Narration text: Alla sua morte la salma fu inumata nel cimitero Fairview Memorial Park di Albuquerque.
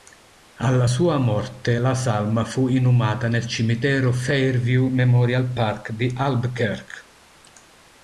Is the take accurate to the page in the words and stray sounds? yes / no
yes